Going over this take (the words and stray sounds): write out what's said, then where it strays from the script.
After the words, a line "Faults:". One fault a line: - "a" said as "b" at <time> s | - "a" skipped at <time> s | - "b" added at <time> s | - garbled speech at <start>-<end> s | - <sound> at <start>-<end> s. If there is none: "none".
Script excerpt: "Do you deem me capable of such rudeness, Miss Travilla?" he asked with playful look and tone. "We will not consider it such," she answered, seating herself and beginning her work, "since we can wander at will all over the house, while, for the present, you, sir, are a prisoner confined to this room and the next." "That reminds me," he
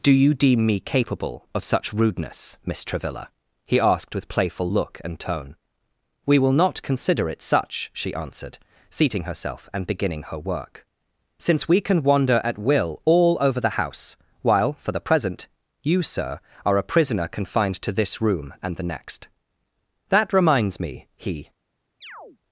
"Do you deem me capable of such rudeness, Miss Travilla?" he asked with playful look and tone. "We will not consider it such," she answered, seating herself and beginning her work, "since we can wander at will all over the house, while, for the present, you, sir, are a prisoner confined to this room and the next." "That reminds me," he
Faults:
- chirp at 22.0-22.4 s